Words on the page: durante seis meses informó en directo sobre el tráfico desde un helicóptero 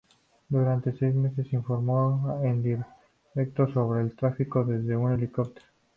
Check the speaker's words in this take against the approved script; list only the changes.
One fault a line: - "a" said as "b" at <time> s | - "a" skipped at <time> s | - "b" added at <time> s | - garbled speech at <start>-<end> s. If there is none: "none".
none